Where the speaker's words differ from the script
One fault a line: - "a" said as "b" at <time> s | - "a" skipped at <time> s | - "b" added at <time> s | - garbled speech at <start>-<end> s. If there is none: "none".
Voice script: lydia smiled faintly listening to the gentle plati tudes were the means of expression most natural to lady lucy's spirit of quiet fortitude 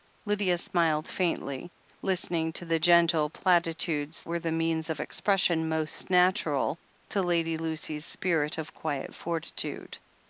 none